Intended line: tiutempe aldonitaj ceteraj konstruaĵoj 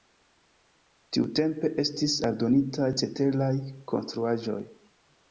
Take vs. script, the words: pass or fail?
fail